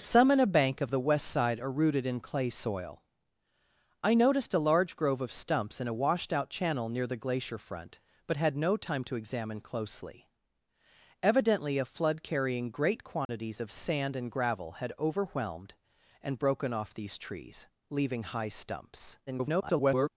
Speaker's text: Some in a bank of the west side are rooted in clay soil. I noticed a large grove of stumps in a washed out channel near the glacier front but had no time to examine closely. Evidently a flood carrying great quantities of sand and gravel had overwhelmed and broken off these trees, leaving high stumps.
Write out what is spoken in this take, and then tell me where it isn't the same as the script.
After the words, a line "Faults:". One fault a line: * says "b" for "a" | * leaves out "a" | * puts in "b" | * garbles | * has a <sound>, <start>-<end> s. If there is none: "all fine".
Some in a bank of the west side are rooted in clay soil. I noticed a large grove of stumps in a washed out channel near the glacier front but had no time to examine closely. Evidently a flood carrying great quantities of sand and gravel had overwhelmed and broken off these trees, leaving high stumps. [garbled]
Faults:
* has a dropout, 13.3-13.3 s
* garbles